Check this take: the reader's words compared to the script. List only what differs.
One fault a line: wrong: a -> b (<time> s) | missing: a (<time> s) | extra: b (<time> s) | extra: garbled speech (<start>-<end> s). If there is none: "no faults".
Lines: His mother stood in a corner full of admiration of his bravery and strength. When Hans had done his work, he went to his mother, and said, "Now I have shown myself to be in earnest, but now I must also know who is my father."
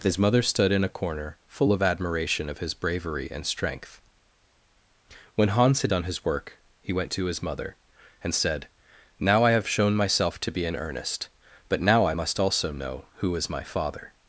no faults